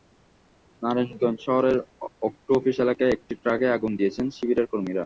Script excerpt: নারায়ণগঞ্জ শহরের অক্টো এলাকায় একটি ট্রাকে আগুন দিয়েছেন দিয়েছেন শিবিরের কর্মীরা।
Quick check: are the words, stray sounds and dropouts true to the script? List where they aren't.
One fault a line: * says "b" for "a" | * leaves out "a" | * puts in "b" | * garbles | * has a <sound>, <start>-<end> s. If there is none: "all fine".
* puts in "অফিস"
* leaves out "দিয়েছেন"